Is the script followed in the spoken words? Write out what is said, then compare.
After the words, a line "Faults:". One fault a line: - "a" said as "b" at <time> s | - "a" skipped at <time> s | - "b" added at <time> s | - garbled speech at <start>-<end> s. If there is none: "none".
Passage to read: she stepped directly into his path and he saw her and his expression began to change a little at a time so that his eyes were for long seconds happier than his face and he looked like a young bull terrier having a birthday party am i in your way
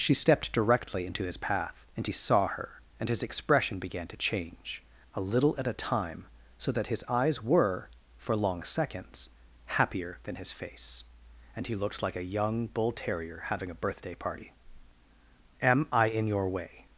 she stepped directly into his path and he saw her and his expression began to change a little at a time so that his eyes were for long seconds happier than his face and he looked like a young bull terrier having a birthday party am i in your way
Faults:
none